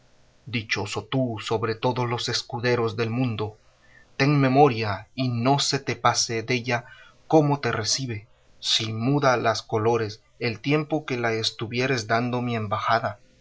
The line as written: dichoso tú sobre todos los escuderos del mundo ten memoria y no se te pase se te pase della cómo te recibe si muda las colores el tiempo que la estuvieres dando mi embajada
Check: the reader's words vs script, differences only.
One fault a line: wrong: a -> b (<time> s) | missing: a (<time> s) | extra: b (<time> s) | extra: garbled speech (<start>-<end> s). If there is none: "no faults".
missing: se te pase (6.4 s)